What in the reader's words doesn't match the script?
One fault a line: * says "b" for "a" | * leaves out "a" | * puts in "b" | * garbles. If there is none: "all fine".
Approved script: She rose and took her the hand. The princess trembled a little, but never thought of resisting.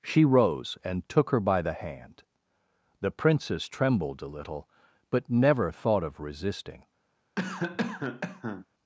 * puts in "by"